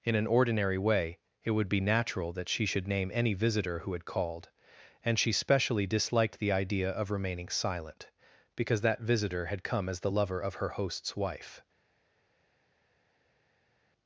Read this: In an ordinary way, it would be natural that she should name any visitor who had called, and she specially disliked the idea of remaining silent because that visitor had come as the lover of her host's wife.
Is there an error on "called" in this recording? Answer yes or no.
no